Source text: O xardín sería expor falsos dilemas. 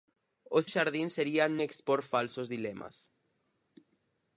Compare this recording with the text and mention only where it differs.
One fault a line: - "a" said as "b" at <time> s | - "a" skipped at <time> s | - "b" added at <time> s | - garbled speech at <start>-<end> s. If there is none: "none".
none